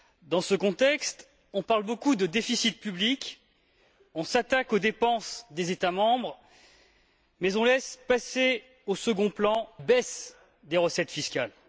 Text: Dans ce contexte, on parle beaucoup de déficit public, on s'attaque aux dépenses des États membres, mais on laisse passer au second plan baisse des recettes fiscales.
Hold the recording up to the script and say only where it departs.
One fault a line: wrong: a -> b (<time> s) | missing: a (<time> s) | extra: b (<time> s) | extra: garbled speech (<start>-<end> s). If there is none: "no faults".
no faults